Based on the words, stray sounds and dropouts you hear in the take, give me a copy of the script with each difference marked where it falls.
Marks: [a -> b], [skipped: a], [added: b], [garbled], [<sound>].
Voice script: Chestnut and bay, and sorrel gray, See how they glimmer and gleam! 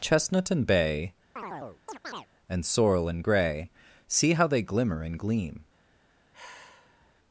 Chestnut and bay, [chirp] and sorrel [added: and] gray, See how they glimmer and gleam! [sigh]